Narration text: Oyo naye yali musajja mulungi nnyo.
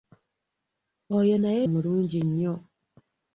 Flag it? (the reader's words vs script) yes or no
yes